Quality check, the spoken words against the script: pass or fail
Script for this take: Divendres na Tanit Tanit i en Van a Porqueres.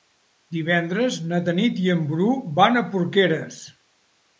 fail